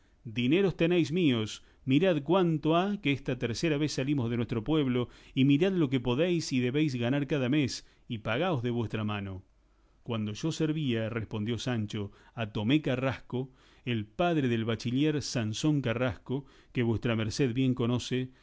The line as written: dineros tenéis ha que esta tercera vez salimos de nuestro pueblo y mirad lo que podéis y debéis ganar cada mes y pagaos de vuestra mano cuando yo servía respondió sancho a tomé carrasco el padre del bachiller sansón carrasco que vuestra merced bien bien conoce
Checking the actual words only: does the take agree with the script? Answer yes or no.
no